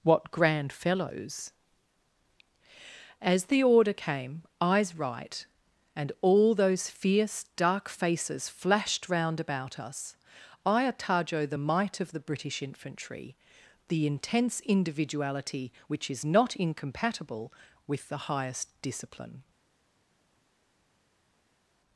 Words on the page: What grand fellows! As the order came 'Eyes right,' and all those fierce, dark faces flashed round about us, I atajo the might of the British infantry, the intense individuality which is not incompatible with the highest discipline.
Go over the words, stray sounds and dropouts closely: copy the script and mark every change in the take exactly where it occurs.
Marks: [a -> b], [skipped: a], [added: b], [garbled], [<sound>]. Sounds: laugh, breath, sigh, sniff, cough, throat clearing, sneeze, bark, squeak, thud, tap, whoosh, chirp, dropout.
What grand fellows! As the order came 'Eyes right,' and all those fierce, dark faces flashed round about us, I atajo the might of the British infantry, the intense individuality which is not incompatible with the highest discipline.